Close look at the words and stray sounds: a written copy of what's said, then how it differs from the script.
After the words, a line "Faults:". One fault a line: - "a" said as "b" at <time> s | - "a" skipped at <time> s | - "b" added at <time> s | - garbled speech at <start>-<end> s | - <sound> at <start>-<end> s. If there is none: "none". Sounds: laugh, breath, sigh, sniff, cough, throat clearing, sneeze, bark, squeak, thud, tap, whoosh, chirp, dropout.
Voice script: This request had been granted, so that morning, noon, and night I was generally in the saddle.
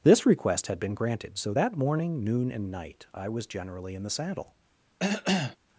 This request had been granted, so that morning, noon, and night I was generally in the saddle.
Faults:
- cough at 5.0-5.6 s